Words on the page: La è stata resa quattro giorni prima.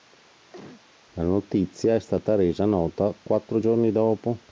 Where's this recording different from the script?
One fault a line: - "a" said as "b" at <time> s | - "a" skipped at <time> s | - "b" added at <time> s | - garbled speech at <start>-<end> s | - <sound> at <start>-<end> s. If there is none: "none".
- cough at 0.5-0.9 s
- "notizia" added at 1.2 s
- "nota" added at 2.6 s
- "prima" said as "dopo" at 3.9 s